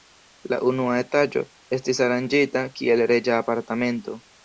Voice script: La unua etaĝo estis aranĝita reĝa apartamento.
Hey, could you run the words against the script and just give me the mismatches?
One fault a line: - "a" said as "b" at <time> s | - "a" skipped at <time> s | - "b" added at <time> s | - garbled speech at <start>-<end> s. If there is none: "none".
- "kiel" added at 2.8 s